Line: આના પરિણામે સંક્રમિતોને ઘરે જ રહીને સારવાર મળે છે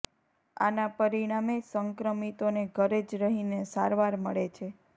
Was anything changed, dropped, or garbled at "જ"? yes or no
no